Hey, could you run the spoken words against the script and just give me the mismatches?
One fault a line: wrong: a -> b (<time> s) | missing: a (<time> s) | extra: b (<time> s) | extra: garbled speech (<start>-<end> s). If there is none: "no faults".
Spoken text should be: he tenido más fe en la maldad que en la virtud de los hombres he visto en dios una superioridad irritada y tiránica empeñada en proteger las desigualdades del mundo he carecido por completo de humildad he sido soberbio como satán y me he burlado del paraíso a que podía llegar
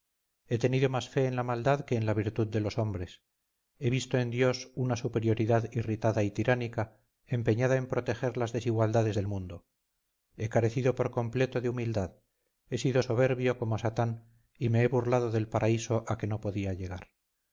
extra: no (16.3 s)